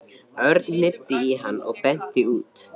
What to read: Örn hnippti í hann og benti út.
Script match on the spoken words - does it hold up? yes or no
yes